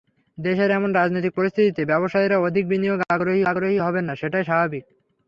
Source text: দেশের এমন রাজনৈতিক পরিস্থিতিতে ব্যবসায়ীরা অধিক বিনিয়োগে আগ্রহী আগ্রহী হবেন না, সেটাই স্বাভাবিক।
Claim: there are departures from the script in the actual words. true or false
false